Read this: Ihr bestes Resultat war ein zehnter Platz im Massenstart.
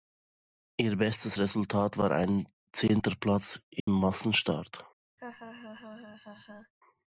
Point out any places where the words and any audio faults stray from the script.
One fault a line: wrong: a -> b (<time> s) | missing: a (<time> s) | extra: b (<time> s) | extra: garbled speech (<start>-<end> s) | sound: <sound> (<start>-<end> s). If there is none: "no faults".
sound: dropout (3.8-3.9 s)
sound: laugh (5.2-6.7 s)